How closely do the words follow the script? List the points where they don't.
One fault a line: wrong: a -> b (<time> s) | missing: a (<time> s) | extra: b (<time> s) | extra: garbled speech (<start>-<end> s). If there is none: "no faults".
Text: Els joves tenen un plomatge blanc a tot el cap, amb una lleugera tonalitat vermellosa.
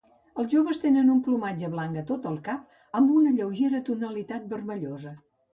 no faults